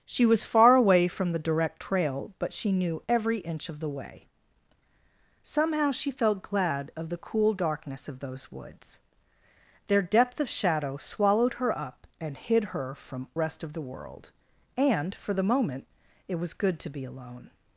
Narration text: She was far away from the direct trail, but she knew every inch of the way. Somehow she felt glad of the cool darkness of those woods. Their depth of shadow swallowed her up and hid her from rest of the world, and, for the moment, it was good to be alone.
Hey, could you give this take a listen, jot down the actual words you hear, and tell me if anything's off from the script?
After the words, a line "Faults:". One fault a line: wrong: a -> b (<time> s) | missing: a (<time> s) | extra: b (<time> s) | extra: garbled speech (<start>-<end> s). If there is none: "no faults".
She was far away from the direct trail, but she knew every inch of the way. Somehow she felt glad of the cool darkness of those woods. Their depth of shadow swallowed her up and hid her from rest of the world, and, for the moment, it was good to be alone.
Faults:
no faults